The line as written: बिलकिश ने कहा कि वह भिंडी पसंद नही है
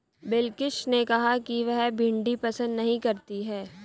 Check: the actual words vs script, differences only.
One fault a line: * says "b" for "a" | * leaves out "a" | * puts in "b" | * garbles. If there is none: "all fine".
* puts in "करती"